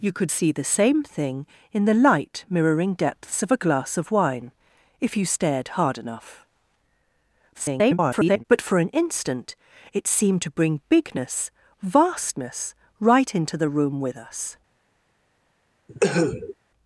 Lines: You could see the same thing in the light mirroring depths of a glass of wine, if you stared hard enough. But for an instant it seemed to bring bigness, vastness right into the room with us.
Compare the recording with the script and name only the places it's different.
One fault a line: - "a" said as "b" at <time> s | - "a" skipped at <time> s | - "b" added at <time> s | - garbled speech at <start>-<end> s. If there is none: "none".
- garbled speech at 7.5-8.4 s